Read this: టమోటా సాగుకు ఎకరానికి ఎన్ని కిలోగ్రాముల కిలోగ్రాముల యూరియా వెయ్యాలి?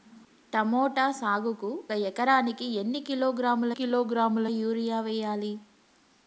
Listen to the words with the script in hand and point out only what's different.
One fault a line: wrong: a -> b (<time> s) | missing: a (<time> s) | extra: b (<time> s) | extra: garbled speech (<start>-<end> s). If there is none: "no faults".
no faults